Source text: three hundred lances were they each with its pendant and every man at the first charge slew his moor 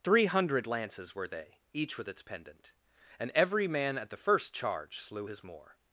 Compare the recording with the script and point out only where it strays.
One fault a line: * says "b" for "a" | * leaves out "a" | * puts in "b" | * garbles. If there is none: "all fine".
all fine